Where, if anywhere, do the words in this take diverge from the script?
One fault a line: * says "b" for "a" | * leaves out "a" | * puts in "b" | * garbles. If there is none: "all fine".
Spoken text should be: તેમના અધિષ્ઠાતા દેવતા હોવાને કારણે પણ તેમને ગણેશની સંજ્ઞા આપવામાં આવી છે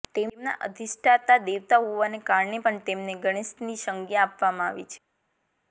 all fine